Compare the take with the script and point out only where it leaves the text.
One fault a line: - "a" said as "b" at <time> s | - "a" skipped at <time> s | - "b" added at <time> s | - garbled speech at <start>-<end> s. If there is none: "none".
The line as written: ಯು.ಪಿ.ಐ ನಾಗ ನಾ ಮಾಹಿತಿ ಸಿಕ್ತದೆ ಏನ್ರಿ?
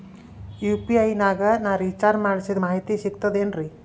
- "ರಿಚಾರ್ಜ್ ಮಾಡಿಸಿದ" added at 1.8 s